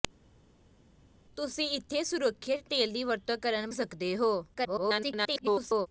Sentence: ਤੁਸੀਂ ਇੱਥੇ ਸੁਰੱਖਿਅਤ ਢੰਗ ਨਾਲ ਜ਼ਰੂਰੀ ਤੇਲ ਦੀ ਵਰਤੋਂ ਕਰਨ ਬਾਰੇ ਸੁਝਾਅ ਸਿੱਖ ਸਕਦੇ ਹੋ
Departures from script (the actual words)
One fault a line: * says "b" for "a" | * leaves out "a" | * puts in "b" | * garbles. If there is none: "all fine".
* leaves out "ਢੰਗ ਨਾਲ ਜ਼ਰੂਰੀ"
* leaves out "ਬਾਰੇ ਸੁਝਾਅ ਸਿੱਖ"
* garbles